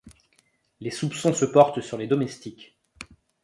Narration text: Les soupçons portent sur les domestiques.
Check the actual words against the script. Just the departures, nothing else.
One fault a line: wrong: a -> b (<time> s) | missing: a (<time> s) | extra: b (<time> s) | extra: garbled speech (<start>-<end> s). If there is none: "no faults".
extra: se (1.3 s)